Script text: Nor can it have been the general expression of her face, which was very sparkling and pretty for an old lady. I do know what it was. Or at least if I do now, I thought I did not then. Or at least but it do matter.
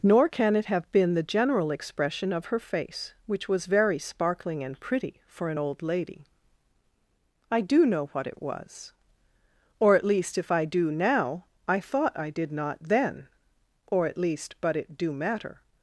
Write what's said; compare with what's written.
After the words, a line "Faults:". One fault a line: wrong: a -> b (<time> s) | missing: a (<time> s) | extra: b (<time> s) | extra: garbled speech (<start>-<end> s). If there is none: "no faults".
Nor can it have been the general expression of her face, which was very sparkling and pretty for an old lady. I do know what it was. Or at least if I do now, I thought I did not then. Or at least but it do matter.
Faults:
no faults